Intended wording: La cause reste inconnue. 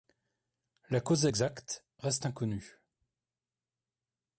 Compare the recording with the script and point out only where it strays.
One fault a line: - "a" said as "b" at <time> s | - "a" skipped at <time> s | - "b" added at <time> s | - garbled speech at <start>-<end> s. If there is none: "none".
- "exacte" added at 1.2 s